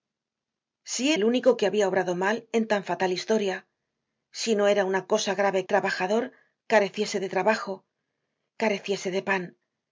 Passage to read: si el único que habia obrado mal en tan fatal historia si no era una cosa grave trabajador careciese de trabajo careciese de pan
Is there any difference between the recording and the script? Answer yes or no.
no